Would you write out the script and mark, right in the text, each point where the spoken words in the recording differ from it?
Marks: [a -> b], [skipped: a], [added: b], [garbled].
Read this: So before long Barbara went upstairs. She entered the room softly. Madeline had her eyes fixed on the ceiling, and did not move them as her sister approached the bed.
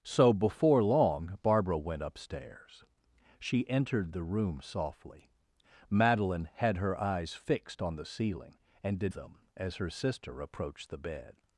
So before long Barbara went upstairs. She entered the room softly. Madeline had her eyes fixed on the ceiling, and did [skipped: not move] them as her sister approached the bed.